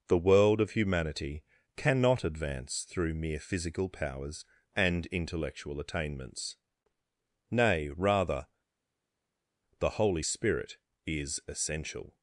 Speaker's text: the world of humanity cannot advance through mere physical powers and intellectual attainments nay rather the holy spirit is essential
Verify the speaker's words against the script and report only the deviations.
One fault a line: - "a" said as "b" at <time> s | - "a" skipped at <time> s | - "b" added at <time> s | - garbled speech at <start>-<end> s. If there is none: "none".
none